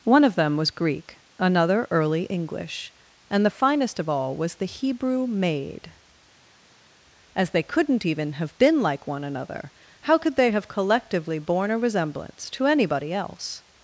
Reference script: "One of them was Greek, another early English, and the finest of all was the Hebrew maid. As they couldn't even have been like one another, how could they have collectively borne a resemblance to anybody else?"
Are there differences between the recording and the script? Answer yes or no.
no